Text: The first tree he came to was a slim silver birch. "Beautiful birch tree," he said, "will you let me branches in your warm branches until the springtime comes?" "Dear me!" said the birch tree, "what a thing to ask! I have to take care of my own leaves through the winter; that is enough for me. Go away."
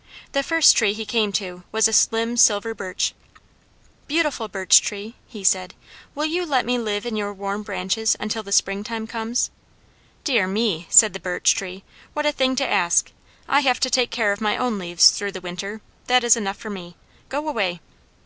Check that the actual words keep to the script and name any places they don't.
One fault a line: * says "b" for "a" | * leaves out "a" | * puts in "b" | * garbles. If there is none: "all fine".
* says "live" for "branches"